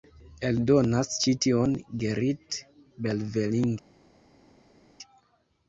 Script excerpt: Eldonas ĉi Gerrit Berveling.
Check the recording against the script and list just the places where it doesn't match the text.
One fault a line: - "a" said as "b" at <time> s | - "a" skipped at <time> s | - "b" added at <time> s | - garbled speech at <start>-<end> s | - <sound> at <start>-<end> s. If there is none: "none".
- "tion" added at 1.5 s